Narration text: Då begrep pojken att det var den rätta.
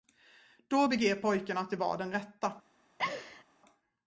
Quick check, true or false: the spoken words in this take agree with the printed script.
true